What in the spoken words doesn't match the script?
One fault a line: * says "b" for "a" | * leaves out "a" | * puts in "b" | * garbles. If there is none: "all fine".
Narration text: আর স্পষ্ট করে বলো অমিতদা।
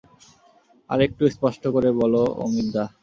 * puts in "একটু"